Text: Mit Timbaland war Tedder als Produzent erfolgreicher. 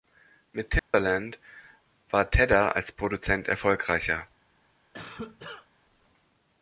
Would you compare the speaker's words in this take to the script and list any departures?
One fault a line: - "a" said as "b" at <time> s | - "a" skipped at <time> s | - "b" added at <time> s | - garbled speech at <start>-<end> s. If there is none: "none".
none